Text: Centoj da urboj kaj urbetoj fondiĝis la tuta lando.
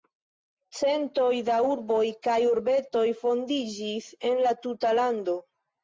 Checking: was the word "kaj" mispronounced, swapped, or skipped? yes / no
no